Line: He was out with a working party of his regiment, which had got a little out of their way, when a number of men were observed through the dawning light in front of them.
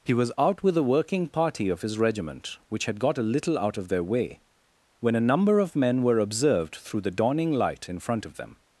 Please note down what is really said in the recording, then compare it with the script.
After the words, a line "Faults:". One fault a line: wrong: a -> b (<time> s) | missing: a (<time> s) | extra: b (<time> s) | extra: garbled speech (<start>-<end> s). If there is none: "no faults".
He was out with a working party of his regiment, which had got a little out of their way, when a number of men were observed through the dawning light in front of them.
Faults:
no faults